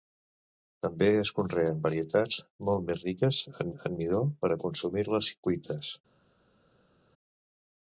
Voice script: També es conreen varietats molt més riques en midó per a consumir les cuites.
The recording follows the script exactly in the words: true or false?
false